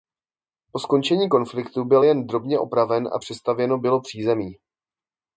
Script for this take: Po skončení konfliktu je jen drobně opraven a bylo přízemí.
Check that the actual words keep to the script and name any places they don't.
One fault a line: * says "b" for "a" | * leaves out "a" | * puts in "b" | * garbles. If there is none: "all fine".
* says "byl" for "je"
* puts in "přestavěno"